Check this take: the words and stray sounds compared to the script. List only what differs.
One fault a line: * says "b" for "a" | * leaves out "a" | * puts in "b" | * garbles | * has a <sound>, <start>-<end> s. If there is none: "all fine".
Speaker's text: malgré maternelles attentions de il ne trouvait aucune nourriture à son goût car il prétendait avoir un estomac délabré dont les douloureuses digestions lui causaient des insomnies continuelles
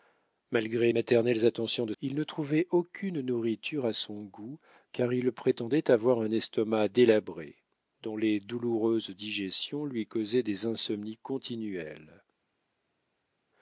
all fine